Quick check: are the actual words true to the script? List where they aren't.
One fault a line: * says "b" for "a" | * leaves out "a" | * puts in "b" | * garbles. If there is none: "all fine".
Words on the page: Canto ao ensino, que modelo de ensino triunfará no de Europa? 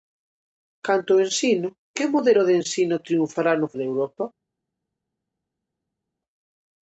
all fine